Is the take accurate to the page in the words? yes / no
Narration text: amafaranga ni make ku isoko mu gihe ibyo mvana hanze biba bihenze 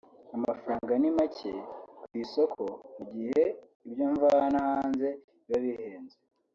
yes